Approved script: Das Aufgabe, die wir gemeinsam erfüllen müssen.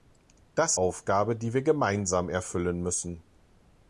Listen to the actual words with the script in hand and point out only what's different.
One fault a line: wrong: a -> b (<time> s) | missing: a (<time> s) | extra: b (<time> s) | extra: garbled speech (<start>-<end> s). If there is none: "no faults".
no faults